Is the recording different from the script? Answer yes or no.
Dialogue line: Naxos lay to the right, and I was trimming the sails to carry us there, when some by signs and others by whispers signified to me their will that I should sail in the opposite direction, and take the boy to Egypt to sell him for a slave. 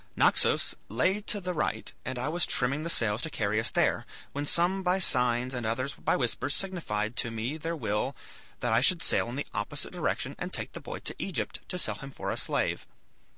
no